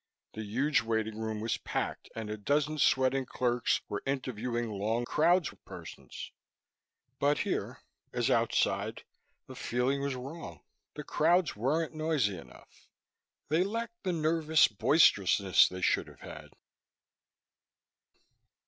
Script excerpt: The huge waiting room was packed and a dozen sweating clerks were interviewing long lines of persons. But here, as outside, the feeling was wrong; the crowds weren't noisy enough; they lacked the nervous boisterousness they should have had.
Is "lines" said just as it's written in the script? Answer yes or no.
no